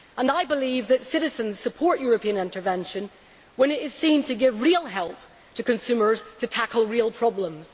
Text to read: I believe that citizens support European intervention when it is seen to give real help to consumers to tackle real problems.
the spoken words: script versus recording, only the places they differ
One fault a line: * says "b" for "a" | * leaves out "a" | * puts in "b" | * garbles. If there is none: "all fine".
all fine